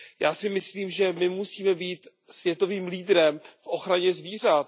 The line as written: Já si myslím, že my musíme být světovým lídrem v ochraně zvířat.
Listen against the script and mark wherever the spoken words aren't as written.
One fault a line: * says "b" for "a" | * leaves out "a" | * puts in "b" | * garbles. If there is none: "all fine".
all fine